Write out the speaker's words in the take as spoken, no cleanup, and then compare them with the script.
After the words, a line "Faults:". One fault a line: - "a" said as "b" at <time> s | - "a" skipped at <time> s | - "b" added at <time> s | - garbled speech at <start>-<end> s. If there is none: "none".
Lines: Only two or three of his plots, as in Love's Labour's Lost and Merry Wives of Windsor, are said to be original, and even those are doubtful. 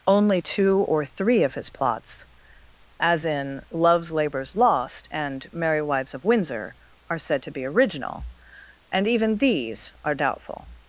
Only two or three of his plots, as in Love's Labour's Lost and Merry Wives of Windsor, are said to be original, and even these are doubtful.
Faults:
- "those" said as "these" at 9.4 s